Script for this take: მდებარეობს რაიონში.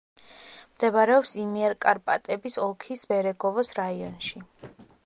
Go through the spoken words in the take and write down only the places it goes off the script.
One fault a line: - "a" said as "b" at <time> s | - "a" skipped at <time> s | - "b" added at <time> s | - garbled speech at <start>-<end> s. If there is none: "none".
- "იმიერკარპატების ოლქის ბერეგოვოს" added at 1.4 s